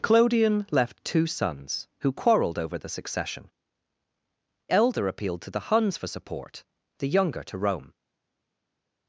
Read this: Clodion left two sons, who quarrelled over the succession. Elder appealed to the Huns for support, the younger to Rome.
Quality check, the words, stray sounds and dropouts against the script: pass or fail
pass